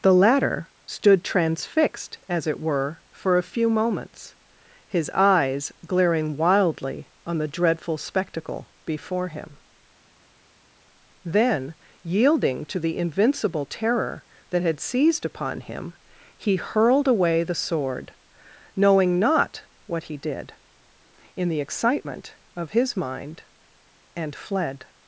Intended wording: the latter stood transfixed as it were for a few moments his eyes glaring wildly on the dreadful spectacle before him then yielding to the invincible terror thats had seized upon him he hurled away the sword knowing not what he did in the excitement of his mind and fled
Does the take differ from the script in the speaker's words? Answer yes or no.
yes